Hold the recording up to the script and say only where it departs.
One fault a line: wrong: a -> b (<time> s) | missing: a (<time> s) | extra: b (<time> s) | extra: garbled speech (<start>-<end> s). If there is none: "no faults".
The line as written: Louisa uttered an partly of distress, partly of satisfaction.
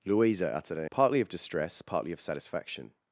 no faults